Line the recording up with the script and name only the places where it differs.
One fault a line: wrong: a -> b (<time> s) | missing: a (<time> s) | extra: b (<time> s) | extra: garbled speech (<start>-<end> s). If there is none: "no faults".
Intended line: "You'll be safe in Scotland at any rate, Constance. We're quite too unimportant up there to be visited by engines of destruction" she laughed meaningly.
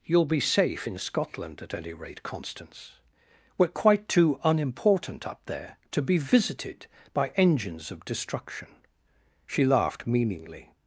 no faults